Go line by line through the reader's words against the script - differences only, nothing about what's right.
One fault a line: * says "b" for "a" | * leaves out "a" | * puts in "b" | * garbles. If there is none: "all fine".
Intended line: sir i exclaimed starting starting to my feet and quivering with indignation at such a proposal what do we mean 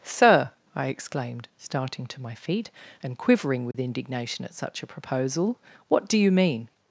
* leaves out "starting"
* says "you" for "we"